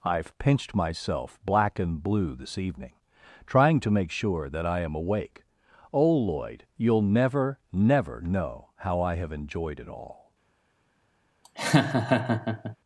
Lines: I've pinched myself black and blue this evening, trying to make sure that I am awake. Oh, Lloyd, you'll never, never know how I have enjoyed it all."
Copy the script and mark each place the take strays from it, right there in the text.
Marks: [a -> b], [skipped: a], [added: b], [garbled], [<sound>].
I've pinched myself black and blue this evening, trying to make sure that I am awake. Oh, Lloyd, you'll never, never know how I have enjoyed it all." [laugh]